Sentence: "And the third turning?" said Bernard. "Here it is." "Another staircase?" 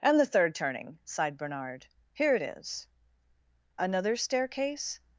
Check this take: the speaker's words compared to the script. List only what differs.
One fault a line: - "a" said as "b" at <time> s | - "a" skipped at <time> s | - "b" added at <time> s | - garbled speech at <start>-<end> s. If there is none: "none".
- "said" said as "sighed" at 1.1 s